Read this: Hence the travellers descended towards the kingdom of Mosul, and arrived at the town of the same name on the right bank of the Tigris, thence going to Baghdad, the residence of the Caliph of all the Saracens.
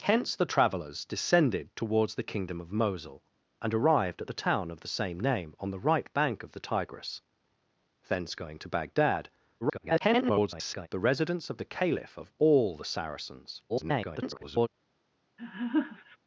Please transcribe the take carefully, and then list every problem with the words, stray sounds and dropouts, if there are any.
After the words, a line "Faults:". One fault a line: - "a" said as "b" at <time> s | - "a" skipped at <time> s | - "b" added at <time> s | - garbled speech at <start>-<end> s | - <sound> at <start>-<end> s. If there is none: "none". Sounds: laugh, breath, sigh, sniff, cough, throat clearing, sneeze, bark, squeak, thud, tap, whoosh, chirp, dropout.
Hence the travellers descended towards the kingdom of Mosul, and arrived at the town of the same name on the right bank of the Tigris, thence going to Baghdad, [garbled] the residence of the Caliph of all the Saracens. [garbled]
Faults:
- garbled speech at 9.6-10.9 s
- garbled speech at 13.7-14.7 s
- laugh at 15.4-16.2 s